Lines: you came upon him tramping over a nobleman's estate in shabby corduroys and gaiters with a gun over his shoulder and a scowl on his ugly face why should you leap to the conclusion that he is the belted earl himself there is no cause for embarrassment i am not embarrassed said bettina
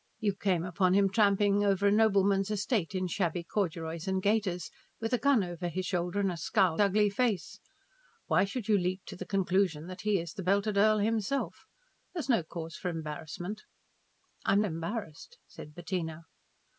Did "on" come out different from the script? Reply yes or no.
yes